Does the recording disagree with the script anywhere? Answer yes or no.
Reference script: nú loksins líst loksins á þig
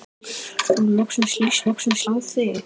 no